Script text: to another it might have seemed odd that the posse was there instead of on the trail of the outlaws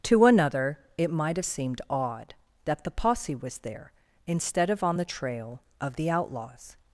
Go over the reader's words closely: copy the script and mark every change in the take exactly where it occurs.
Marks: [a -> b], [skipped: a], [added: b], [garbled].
to another it might have seemed odd that the posse was there instead of on the trail of the outlaws